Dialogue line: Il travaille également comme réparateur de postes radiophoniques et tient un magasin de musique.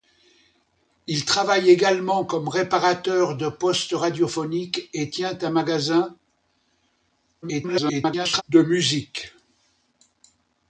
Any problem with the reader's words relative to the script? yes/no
yes